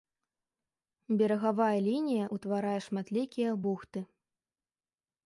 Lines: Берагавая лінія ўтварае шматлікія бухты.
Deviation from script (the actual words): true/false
false